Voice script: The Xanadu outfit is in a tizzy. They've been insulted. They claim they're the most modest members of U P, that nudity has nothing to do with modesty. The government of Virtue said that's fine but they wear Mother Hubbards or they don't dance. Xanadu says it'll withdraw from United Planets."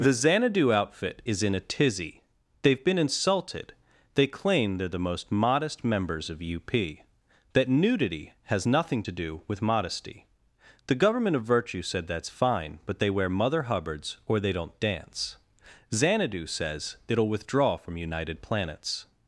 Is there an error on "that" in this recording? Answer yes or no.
no